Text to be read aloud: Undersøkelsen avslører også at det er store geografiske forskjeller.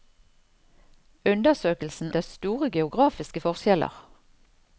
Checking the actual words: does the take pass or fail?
fail